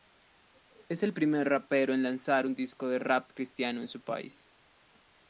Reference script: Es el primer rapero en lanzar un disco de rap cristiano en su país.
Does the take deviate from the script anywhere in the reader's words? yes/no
no